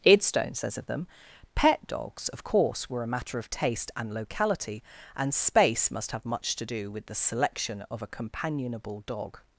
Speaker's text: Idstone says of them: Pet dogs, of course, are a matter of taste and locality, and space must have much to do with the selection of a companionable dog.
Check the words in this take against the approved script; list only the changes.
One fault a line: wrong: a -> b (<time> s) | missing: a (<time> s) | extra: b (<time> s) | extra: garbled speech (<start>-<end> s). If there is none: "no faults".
wrong: are -> were (2.9 s)